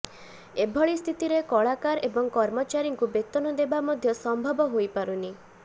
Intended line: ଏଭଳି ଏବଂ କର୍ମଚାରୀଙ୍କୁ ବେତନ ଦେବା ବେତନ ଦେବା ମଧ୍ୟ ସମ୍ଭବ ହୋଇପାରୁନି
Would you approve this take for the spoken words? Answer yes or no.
no